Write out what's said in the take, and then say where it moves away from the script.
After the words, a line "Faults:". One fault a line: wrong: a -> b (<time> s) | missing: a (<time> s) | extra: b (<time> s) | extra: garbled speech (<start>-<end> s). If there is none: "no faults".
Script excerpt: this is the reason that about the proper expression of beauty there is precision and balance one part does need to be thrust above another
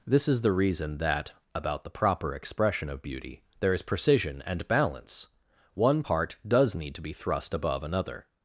this is the reason that about the proper expression of beauty there is precision and balance one part does need to be thrust above another
Faults:
no faults